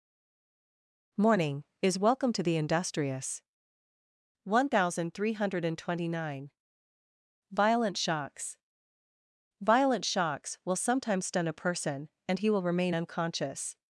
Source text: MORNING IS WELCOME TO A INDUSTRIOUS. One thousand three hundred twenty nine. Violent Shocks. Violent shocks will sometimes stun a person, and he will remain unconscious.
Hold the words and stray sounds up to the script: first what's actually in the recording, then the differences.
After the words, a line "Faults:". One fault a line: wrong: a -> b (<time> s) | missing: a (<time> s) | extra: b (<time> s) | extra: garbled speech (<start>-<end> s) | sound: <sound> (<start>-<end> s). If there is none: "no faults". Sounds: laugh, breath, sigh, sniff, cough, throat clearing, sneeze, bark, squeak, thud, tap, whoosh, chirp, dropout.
MORNING IS WELCOME TO THE INDUSTRIOUS. One thousand three hundred twenty nine. Violent Shocks. Violent shocks will sometimes stun a person, and he will remain unconscious.
Faults:
wrong: A -> THE (2.4 s)